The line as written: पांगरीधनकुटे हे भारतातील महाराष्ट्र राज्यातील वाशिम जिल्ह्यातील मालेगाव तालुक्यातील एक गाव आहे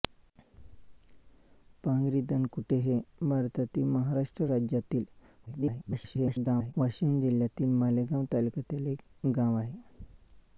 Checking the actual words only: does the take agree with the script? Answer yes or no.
no